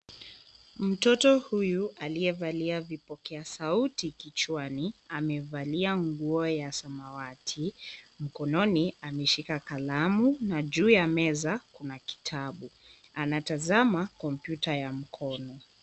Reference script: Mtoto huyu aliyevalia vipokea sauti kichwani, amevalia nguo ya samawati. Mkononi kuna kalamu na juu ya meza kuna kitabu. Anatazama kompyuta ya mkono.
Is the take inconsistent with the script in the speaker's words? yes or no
yes